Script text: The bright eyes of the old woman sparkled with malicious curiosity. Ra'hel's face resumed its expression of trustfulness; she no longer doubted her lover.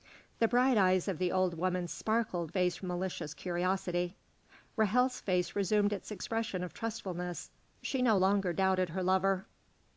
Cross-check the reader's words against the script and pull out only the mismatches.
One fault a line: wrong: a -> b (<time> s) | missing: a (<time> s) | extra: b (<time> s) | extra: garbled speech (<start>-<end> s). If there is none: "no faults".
wrong: with -> face (2.5 s)